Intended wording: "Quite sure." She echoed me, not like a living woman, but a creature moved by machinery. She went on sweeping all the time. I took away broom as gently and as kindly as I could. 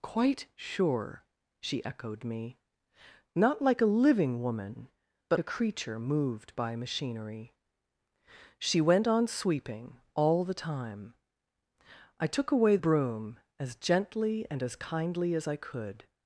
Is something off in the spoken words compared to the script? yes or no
no